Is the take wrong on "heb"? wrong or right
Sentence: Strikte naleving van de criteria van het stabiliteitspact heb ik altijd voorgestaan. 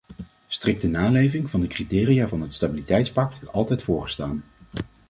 wrong